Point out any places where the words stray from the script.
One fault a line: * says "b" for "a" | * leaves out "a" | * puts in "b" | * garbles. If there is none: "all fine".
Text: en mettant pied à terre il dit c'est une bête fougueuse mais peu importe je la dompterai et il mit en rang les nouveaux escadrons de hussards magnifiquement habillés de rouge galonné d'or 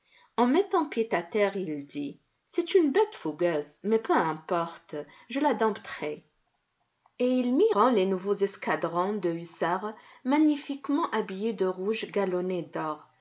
* leaves out "en"